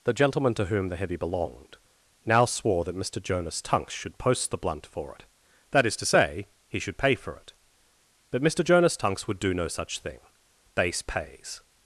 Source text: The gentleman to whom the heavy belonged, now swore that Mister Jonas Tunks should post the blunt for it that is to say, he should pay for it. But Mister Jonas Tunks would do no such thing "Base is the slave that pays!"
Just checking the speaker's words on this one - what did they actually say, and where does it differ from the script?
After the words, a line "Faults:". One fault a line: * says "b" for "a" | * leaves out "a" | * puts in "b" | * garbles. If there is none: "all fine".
The gentleman to whom the heavy belonged, now swore that Mister Jonas Tunks should post the blunt for it that is to say, he should pay for it. But Mister Jonas Tunks would do no such thing "Base pays!"
Faults:
* leaves out "is the slave that"